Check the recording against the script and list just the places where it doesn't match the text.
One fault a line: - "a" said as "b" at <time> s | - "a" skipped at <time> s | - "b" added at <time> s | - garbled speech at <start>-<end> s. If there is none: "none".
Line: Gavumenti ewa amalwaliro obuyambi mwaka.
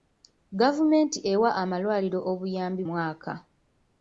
none